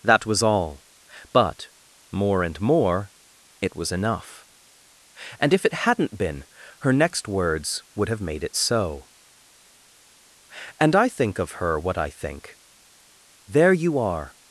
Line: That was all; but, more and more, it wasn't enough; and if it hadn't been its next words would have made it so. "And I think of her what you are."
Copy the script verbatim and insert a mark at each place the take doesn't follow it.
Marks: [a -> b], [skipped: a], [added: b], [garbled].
That was all; but, more and more, it [wasn't -> was] enough; and if it hadn't been [its -> her] next words would have made it so. "And I think of her what [added: I think There] you are."